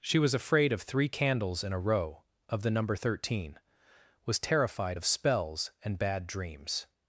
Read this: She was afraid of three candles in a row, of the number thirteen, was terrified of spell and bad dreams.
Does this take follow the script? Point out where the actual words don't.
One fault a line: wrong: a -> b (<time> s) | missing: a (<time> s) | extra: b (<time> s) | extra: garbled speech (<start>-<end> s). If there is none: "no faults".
wrong: spell -> spells (5.0 s)